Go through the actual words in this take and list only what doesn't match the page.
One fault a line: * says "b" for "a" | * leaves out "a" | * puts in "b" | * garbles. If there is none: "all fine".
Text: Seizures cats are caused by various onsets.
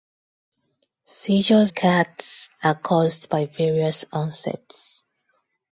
all fine